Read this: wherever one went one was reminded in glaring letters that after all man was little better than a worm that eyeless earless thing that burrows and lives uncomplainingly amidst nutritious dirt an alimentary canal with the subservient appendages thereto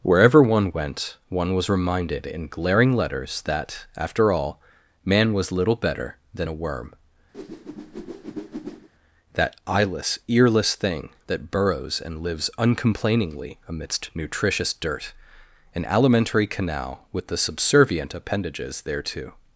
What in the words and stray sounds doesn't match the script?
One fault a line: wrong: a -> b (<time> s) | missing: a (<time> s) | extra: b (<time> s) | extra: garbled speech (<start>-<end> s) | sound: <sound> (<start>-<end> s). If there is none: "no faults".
sound: whoosh (7.3-8.9 s)